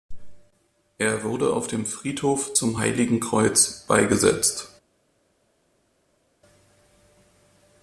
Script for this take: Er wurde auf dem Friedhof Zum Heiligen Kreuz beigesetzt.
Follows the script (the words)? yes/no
yes